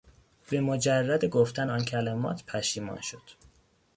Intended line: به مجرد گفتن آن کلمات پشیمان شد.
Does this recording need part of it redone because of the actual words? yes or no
no